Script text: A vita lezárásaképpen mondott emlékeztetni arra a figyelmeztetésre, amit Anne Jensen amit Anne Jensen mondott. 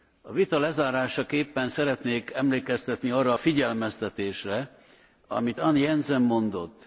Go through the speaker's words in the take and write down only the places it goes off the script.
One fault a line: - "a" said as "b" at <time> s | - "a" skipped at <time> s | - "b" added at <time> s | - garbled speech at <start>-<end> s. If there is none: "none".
- "mondott" said as "szeretnék" at 1.7 s
- "amit Anne Jensen" skipped at 6.2 s